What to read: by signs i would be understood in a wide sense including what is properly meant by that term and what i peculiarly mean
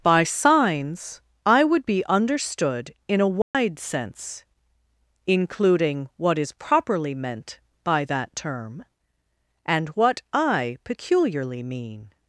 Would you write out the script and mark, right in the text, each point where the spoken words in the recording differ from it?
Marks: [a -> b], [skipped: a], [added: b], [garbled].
by signs i would be understood in a wide sense including what is properly meant by that term and what i peculiarly mean